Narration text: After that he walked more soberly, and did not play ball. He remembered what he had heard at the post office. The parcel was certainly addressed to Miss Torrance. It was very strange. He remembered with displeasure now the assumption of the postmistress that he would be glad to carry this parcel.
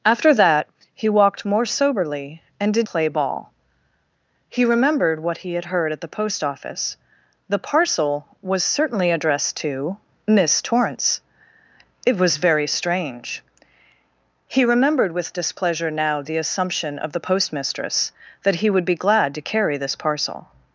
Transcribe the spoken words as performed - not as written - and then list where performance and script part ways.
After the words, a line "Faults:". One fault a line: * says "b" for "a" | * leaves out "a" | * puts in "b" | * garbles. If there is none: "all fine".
After that he walked more soberly, and did play ball. He remembered what he had heard at the post office. The parcel was certainly addressed to Miss Torrance. It was very strange. He remembered with displeasure now the assumption of the postmistress that he would be glad to carry this parcel.
Faults:
* leaves out "not"